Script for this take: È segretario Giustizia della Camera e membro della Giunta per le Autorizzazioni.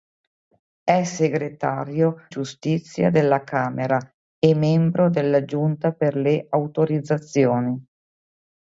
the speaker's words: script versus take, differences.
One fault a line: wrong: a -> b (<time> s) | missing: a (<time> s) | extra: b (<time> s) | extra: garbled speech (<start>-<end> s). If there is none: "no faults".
no faults